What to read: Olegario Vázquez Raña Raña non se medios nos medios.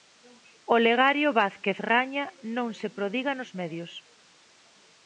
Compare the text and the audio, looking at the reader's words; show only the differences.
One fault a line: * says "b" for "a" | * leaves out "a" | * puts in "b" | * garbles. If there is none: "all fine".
* leaves out "Raña"
* says "prodiga" for "medios"